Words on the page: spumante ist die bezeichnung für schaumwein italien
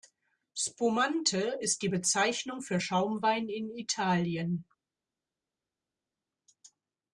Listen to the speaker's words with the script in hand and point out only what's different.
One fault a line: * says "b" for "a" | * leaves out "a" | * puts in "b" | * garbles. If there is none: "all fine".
* puts in "in"